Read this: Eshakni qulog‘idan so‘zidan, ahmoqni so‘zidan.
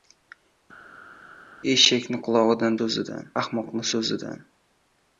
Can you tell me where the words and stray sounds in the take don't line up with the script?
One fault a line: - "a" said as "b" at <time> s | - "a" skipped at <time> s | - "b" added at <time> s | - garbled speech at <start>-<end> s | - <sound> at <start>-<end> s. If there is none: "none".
none